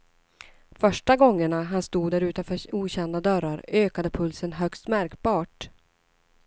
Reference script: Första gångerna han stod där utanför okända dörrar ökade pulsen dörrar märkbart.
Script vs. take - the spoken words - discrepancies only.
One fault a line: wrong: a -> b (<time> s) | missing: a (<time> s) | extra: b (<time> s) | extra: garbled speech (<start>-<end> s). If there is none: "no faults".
wrong: dörrar -> högst (4.5 s)